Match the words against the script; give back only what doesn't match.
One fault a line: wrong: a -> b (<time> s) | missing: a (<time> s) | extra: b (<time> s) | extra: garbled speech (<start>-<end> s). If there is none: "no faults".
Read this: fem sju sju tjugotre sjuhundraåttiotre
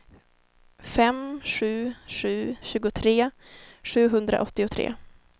no faults